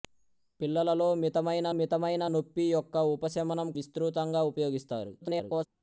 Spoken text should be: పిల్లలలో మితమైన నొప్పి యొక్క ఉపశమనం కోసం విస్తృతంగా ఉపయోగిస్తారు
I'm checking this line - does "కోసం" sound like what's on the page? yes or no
no